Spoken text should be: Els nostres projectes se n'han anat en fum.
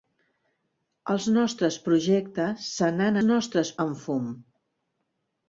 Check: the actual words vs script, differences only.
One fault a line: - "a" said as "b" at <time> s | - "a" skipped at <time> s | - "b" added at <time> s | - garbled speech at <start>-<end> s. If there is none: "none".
- "anat" said as "nostres" at 3.3 s